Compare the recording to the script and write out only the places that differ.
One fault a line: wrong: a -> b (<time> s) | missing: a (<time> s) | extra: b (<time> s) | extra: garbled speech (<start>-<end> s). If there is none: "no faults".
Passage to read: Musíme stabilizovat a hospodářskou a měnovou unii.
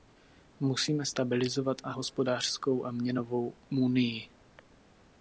no faults